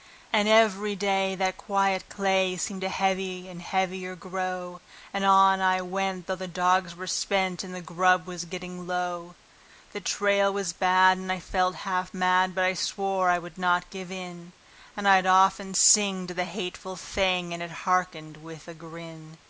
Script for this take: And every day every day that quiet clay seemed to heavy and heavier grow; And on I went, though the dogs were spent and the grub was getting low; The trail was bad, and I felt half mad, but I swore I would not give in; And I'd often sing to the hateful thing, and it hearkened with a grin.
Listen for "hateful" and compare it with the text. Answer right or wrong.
right